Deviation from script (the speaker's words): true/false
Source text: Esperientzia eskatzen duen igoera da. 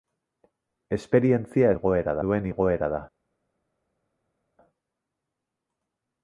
true